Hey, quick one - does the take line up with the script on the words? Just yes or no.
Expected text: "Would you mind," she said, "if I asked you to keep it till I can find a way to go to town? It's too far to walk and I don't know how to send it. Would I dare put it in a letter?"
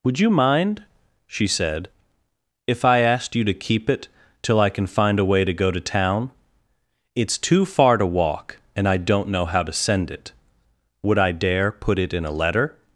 yes